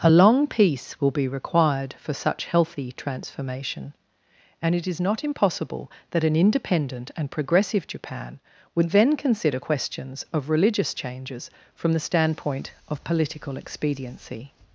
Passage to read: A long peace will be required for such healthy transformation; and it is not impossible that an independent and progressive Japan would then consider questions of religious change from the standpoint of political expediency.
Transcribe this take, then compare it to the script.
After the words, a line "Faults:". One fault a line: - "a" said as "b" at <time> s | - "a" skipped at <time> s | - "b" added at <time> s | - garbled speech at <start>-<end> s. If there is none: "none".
A long peace will be required for such healthy transformation; and it is not impossible that an independent and progressive Japan would then consider questions of religious changes from the standpoint of political expediency.
Faults:
- "change" said as "changes" at 10.9 s